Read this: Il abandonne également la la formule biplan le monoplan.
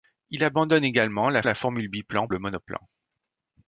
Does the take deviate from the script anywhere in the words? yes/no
no